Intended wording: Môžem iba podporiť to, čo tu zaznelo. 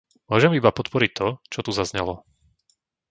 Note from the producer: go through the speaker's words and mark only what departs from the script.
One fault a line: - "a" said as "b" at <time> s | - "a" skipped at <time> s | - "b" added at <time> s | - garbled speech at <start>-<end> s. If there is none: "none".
none